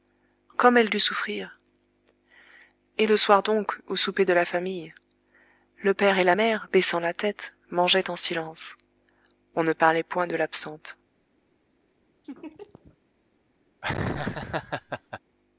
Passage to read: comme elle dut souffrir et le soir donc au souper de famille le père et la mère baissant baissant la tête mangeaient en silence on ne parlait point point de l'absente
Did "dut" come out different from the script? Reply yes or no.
no